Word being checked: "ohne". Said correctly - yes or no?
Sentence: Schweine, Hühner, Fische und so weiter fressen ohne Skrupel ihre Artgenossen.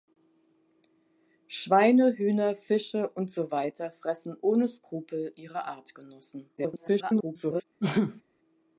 yes